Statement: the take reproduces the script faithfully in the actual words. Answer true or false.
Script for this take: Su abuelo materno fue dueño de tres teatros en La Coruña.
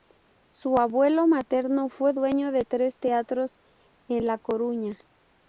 true